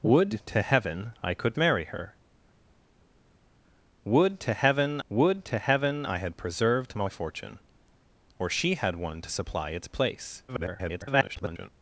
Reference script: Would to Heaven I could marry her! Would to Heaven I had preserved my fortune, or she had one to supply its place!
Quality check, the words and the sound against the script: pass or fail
fail